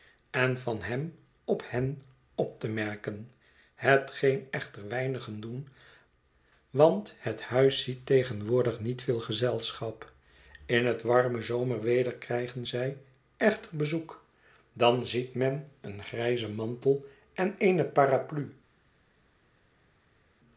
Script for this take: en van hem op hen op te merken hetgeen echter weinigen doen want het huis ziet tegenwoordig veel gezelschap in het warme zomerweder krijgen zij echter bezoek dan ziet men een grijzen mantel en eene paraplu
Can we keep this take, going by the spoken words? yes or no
no